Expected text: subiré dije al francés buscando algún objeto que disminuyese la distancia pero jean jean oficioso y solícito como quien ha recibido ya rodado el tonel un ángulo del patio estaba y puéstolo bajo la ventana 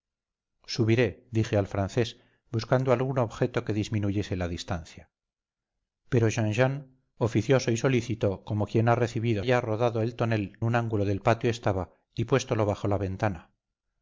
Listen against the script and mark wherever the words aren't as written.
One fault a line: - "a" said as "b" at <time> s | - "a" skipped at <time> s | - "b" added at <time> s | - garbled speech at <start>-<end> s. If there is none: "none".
none